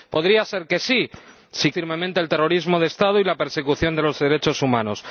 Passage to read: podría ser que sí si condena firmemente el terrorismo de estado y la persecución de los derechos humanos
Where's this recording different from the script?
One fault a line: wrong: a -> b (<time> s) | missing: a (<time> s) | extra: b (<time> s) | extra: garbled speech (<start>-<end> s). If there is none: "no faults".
missing: condena (1.7 s)